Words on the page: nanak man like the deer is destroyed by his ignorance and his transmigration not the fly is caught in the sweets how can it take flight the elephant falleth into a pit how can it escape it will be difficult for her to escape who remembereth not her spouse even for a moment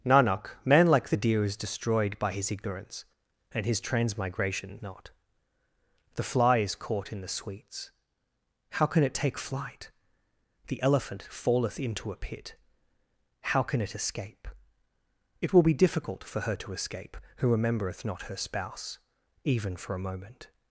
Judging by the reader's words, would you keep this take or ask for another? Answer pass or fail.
pass